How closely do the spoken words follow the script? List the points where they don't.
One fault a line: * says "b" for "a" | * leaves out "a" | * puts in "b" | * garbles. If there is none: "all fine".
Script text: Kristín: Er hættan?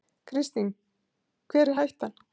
* puts in "Hver"